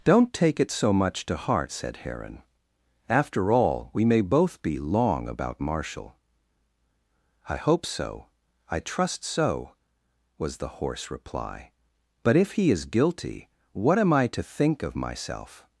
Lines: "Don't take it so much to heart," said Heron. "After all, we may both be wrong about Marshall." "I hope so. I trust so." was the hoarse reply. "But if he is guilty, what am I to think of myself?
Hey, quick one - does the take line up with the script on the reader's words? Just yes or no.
no